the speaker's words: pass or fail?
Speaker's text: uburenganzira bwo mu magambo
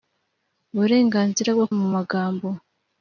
pass